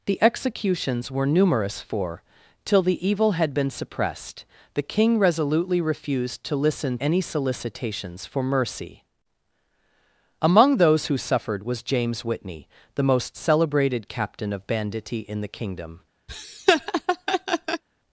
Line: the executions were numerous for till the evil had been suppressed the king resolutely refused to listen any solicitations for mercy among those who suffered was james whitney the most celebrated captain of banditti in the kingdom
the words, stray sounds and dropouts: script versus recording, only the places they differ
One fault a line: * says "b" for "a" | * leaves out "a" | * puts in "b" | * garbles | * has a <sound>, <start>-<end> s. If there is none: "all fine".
* has a laugh, 16.3-17.8 s